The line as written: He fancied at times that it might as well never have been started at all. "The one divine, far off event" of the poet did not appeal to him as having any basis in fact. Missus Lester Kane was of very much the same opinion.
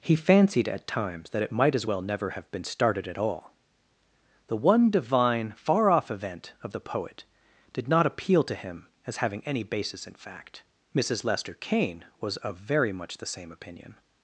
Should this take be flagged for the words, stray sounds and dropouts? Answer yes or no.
no